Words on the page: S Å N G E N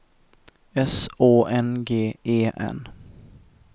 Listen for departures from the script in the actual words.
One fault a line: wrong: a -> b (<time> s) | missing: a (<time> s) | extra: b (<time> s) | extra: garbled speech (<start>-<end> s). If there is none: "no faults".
no faults